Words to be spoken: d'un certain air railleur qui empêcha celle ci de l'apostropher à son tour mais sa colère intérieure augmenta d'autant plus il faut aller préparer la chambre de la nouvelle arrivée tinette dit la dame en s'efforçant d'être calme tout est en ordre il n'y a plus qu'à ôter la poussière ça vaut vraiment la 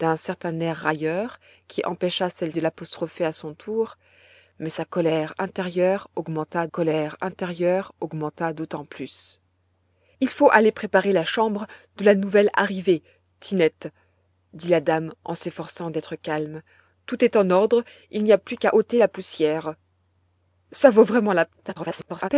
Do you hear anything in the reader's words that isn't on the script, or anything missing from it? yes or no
yes